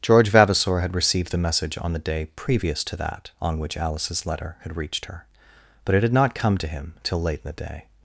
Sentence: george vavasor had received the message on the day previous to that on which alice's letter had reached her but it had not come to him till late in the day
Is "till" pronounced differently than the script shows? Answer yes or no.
no